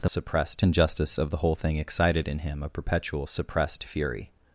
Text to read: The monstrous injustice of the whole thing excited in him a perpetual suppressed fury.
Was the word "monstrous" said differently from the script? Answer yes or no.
yes